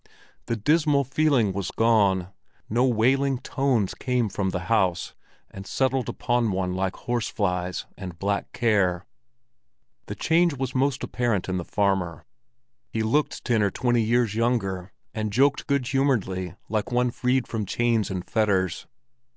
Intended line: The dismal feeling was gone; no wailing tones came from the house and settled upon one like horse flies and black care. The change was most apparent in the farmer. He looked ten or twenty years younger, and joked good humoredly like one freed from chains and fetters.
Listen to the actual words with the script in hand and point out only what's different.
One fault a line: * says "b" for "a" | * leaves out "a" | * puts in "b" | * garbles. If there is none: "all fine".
all fine